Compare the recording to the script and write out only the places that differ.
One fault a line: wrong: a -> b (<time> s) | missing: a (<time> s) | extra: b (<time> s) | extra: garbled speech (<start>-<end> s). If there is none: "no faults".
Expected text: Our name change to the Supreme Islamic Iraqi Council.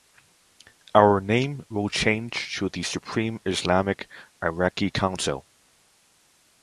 extra: will (1.7 s)